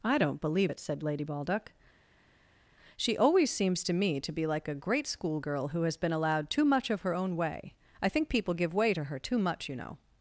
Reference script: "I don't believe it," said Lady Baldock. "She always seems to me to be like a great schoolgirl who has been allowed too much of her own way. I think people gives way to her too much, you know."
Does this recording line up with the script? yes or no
no